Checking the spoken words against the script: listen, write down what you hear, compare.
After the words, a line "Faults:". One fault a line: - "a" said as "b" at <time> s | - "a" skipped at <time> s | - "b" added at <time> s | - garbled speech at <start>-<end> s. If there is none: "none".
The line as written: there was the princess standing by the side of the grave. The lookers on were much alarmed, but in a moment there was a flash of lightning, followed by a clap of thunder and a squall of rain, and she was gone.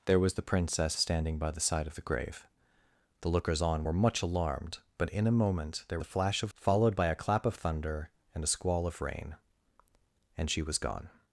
there was the princess standing by the side of the grave. The lookers on were much alarmed, but in a moment there a flash of followed by a clap of thunder and a squall of rain, and she was gone.
Faults:
- "was" skipped at 6.0 s
- "lightning" skipped at 6.5 s